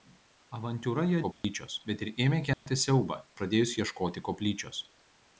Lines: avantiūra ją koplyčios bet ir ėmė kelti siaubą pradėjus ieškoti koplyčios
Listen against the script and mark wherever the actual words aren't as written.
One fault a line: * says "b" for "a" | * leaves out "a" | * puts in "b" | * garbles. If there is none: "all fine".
all fine